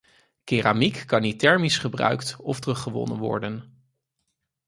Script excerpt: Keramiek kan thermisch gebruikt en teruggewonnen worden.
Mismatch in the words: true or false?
true